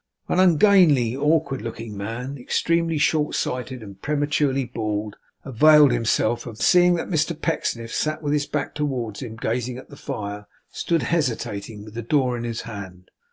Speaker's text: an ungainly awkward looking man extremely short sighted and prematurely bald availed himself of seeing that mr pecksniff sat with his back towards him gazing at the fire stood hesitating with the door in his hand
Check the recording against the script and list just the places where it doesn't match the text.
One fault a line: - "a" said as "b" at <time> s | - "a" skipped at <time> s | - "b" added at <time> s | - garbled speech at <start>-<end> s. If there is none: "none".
none